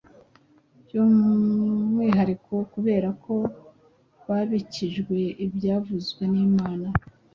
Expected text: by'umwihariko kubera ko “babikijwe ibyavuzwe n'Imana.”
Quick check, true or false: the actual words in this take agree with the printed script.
true